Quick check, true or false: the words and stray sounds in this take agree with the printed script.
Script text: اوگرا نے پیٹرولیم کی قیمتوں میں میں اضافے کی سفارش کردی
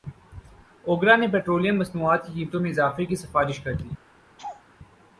false